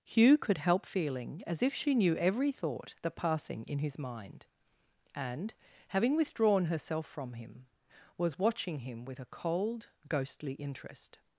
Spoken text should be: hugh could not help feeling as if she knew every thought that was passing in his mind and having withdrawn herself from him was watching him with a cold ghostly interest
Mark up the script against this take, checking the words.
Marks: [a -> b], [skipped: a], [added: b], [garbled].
hugh could [skipped: not] help feeling as if she knew every thought that [skipped: was] passing in his mind and having withdrawn herself from him was watching him with a cold ghostly interest